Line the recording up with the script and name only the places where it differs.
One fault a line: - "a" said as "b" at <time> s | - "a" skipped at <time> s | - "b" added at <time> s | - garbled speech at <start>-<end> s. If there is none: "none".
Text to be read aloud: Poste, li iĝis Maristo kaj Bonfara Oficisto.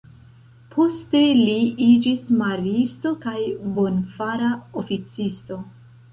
none